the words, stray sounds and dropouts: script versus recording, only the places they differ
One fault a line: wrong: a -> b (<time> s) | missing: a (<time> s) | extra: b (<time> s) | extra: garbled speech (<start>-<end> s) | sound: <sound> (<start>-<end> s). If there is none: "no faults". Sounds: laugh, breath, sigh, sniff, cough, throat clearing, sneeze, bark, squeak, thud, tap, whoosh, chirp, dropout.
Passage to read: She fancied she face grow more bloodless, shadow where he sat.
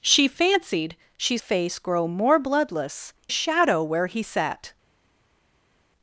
no faults